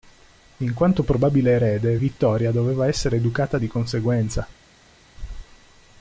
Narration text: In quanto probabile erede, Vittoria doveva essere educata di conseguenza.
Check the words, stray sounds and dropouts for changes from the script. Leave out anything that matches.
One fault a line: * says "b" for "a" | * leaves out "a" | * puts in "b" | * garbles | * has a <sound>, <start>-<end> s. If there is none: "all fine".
all fine